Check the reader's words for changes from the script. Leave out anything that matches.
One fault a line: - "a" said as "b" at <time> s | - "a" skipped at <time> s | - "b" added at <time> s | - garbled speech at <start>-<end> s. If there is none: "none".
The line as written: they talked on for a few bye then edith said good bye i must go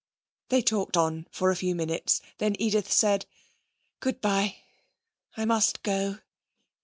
- "bye" said as "minutes" at 1.7 s